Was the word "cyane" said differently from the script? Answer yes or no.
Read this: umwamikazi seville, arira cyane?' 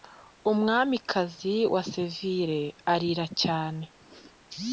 no